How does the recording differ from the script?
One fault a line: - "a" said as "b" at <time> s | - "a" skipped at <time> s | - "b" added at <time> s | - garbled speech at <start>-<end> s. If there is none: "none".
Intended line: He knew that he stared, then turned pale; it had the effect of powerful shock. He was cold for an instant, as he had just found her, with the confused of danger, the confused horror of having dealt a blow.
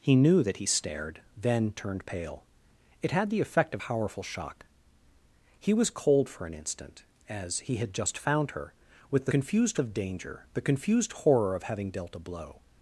none